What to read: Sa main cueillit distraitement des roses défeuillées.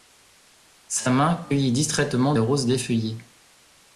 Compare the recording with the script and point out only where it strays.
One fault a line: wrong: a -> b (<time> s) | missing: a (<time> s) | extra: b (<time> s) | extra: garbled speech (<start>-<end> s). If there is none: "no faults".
missing: des (2.3 s)